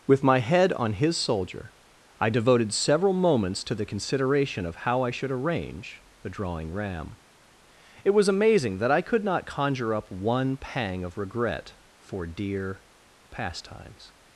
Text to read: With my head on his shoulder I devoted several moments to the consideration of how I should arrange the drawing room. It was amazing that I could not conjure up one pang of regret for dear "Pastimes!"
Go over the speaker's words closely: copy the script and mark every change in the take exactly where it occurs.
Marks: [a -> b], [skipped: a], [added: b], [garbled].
With my head on his [shoulder -> soldier] I devoted several moments to the consideration of how I should arrange the drawing [room. -> ram] It was amazing that I could not conjure up one pang of regret for dear "Pastimes!"